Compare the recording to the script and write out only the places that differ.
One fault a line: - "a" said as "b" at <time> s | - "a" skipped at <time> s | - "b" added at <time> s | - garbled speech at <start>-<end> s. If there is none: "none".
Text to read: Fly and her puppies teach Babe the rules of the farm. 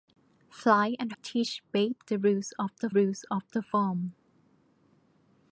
- "her puppies teach Babe" said as "teach Babe the rules of" at 1.2 s